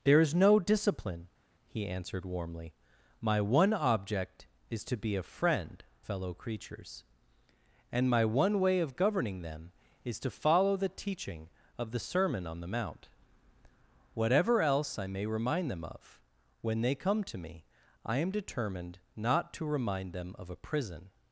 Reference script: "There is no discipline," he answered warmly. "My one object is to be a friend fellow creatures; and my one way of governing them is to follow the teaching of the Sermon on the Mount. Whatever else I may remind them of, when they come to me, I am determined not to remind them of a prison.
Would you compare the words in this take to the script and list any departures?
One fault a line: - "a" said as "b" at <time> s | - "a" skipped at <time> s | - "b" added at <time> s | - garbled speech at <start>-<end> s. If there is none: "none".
none